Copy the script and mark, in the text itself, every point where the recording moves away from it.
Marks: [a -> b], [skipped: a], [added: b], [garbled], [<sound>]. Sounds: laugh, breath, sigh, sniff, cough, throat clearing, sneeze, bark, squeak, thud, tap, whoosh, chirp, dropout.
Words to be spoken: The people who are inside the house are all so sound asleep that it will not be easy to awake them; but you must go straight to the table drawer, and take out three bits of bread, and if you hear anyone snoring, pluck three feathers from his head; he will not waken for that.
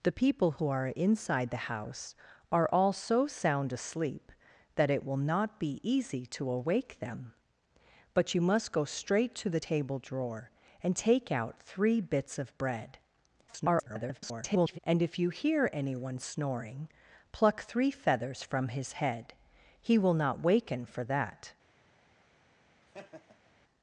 The people who are inside the house are all so sound asleep that it will not be easy to awake them; but you must go straight to the table drawer, and take out three bits of bread, [garbled] and if you hear anyone snoring, pluck three feathers from his head; he will not waken for that. [laugh]